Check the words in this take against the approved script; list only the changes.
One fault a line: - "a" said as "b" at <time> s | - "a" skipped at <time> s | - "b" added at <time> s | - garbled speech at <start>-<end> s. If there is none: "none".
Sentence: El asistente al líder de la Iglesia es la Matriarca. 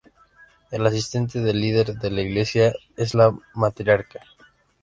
- "al" said as "del" at 1.4 s